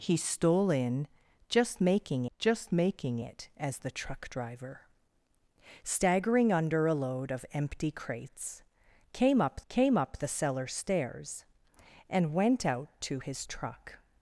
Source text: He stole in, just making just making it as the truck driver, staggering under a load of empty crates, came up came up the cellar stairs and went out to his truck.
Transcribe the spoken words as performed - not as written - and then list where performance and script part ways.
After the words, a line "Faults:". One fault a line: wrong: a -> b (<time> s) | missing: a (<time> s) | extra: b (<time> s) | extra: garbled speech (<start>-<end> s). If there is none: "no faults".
He stole in, just making just making it as the truck driver, staggering under a load of empty crates, came up came up the cellar stairs and went out to his truck.
Faults:
no faults